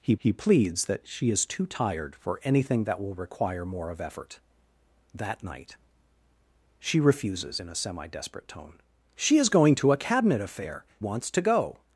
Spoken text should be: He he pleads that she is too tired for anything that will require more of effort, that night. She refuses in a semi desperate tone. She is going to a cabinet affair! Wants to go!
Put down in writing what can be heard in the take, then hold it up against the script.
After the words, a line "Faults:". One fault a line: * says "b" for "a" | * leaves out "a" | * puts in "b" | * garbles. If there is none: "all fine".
He he pleads that she is too tired for anything that will require more of effort, that night. She refuses in a semi desperate tone. She is going to a cabinet affair! Wants to go!
Faults:
all fine